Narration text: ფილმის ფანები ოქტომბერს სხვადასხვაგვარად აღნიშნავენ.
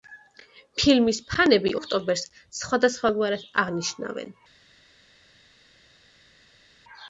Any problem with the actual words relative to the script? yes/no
no